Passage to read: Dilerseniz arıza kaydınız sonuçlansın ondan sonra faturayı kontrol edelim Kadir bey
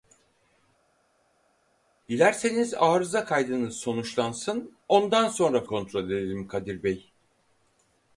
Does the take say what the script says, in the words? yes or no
no